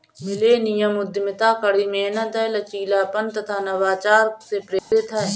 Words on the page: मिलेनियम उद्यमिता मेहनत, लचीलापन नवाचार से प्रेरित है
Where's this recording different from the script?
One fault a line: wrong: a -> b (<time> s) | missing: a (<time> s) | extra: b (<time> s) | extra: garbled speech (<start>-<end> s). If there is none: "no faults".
extra: कड़ी (1.6 s)
extra: तथा (3.3 s)